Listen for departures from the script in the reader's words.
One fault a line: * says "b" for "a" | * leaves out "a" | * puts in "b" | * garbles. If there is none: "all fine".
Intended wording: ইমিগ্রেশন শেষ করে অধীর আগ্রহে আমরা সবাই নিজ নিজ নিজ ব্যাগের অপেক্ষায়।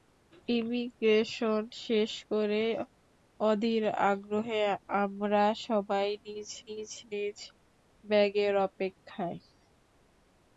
all fine